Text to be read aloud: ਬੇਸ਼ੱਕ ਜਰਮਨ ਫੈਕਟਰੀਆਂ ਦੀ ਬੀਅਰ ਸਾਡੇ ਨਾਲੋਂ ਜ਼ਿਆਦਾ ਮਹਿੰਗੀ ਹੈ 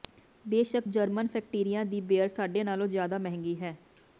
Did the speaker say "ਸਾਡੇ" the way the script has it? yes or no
yes